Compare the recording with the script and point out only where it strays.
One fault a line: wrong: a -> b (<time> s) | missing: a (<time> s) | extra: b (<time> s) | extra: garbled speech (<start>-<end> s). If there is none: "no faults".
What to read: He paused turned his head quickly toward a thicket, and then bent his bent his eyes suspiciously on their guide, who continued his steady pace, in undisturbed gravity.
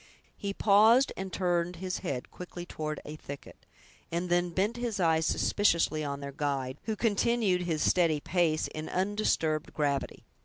extra: and (1.1 s)
missing: bent his (5.0 s)